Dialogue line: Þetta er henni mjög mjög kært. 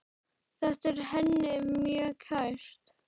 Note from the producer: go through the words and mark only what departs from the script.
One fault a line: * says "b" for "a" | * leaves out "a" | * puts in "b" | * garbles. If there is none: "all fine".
* leaves out "mjög"